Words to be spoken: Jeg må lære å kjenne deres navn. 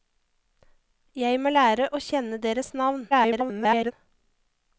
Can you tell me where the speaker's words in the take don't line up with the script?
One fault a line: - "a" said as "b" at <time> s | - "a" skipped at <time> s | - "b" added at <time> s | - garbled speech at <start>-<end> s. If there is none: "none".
- garbled speech at 3.1-3.9 s